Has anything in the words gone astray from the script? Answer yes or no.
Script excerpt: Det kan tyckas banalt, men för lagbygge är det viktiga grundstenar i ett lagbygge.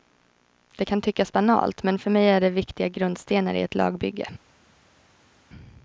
yes